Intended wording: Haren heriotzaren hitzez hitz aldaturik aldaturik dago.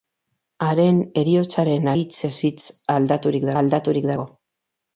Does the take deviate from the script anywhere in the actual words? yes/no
no